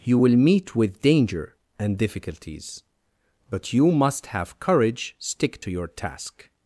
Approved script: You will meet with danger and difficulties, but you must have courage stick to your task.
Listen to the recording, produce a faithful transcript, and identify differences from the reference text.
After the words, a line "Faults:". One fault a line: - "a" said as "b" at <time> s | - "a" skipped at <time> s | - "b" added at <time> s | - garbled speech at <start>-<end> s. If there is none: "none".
You will meet with danger and difficulties, but you must have courage stick to your task.
Faults:
none